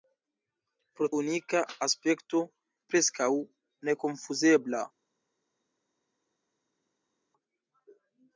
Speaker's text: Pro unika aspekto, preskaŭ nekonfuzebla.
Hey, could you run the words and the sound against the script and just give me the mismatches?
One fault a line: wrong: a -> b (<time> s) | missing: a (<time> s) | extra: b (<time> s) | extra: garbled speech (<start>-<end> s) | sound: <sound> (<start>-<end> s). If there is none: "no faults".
no faults